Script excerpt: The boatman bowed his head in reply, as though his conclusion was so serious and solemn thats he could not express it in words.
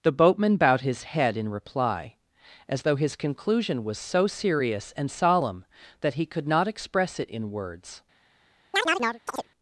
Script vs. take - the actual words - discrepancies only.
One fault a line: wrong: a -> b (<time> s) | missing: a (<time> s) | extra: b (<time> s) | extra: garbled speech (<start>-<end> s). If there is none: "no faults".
wrong: thats -> that (6.0 s)